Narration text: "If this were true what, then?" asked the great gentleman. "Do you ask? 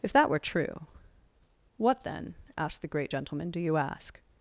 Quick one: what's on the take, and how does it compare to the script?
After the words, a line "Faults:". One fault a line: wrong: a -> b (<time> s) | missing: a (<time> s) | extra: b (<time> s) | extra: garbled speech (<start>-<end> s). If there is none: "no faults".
"If that were true what, then?" asked the great gentleman. "Do you ask?
Faults:
wrong: this -> that (0.1 s)